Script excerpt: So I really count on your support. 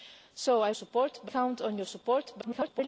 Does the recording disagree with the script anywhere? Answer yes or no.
yes